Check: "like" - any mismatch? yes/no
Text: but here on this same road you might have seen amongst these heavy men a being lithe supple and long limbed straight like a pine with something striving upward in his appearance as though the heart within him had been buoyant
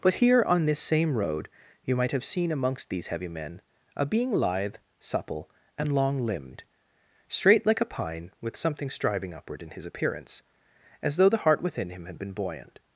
no